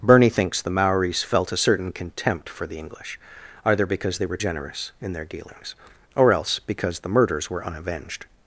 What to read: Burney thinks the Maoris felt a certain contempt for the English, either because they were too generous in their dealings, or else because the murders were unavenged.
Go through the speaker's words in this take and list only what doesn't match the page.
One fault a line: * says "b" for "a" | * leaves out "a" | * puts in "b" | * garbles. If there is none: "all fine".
* leaves out "too"